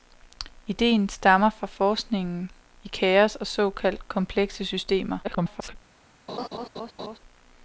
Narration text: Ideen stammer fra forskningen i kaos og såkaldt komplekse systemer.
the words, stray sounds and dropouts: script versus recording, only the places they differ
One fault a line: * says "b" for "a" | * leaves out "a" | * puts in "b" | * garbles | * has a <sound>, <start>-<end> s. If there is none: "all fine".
* garbles
* has a laugh, 6.3-7.2 s